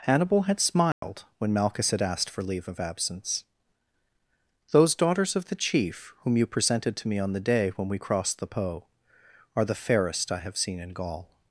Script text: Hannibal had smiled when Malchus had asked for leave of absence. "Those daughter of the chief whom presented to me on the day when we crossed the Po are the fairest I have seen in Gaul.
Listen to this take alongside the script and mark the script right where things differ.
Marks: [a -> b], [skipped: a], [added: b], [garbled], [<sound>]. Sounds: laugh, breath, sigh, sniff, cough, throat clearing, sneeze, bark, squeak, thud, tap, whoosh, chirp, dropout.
Hannibal had smiled [dropout] when Malchus had asked for leave of absence. "Those [daughter -> daughters] of the chief whom [added: you] presented to me on the day when we crossed the Po are the fairest I have seen in Gaul.